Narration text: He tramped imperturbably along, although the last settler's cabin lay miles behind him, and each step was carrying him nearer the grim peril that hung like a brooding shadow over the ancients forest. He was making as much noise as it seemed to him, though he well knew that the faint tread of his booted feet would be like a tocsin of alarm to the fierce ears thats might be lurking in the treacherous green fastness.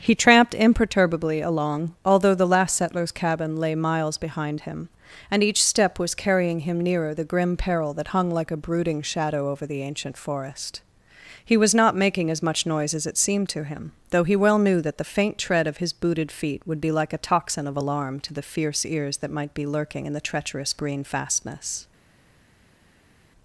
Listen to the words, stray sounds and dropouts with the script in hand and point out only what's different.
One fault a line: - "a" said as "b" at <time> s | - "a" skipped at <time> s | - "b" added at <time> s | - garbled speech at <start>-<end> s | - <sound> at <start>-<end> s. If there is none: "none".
- "ancients" said as "ancient" at 9.8 s
- "not" added at 11.7 s
- "thats" said as "that" at 19.2 s